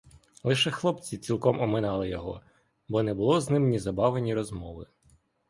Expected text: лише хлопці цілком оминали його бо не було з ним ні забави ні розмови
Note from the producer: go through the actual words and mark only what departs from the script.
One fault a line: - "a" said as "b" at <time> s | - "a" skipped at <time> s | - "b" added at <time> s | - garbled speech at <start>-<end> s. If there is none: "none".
none